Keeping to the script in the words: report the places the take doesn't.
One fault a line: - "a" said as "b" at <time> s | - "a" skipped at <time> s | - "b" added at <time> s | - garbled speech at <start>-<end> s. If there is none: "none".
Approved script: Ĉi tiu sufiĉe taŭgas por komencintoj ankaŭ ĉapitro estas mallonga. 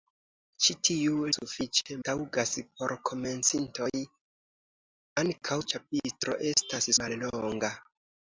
none